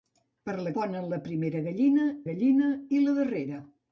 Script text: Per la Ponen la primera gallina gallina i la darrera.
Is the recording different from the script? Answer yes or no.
no